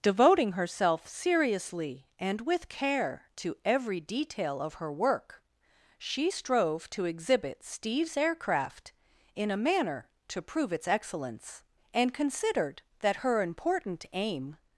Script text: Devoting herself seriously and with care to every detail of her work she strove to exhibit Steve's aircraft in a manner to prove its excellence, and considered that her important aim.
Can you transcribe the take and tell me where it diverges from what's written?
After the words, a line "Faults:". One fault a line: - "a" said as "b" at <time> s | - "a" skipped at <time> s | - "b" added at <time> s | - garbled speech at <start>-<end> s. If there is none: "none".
Devoting herself seriously and with care to every detail of her work she strove to exhibit Steve's aircraft in a manner to prove its excellence, and considered that her important aim.
Faults:
none